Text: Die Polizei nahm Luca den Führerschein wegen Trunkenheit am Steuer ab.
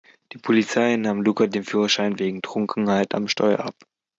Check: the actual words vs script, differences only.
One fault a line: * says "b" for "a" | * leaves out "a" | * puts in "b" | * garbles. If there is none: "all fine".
all fine